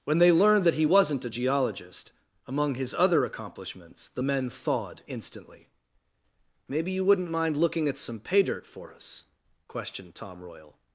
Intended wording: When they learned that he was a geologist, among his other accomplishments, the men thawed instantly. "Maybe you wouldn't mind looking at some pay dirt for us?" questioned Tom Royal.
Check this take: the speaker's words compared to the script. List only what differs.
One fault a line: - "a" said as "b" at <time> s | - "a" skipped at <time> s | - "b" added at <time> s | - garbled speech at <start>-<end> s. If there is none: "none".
- "was" said as "wasn't" at 0.8 s